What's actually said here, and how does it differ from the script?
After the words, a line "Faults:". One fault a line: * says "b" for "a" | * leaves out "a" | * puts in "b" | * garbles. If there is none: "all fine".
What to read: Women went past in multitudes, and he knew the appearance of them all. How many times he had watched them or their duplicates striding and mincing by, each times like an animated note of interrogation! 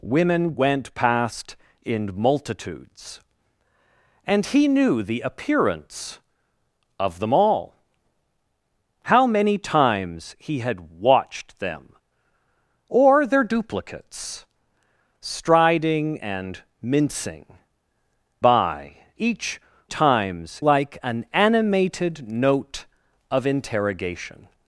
Women went past in multitudes, and he knew the appearance of them all. How many times he had watched them or their duplicates striding and mincing by, each times like an animated note of interrogation!
Faults:
all fine